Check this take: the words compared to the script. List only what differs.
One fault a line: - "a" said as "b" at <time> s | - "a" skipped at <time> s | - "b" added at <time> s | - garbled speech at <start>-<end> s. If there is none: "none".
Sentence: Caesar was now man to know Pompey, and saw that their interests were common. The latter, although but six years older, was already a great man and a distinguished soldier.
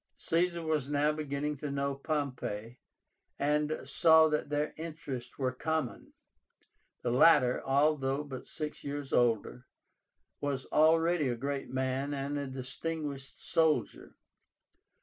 - "man" said as "beginning" at 1.1 s